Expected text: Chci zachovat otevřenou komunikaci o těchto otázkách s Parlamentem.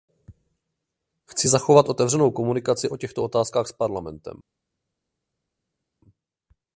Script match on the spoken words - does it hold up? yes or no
yes